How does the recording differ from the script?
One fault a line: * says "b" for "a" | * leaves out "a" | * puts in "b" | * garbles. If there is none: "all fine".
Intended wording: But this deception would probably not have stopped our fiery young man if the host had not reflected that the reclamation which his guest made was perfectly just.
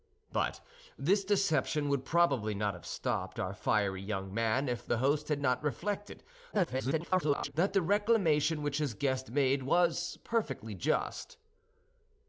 * garbles